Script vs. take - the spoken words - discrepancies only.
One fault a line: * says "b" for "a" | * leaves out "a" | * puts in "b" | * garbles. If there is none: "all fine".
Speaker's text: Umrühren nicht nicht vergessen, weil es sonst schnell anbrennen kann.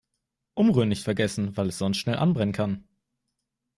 * leaves out "nicht"